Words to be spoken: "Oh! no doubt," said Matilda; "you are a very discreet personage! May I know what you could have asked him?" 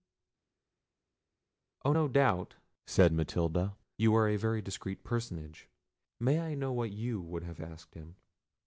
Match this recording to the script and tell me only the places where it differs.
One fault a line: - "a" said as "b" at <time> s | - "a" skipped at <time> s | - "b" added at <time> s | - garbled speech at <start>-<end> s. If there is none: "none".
- "could" said as "would" at 7.2 s